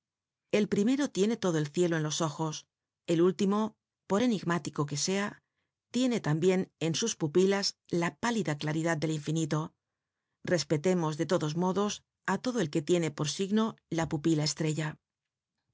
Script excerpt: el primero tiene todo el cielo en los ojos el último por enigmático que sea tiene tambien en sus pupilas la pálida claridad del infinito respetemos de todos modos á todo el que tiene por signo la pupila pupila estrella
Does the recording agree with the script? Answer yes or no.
no